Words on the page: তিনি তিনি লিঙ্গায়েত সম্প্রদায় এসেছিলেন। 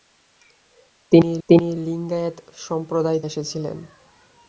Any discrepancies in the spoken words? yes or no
no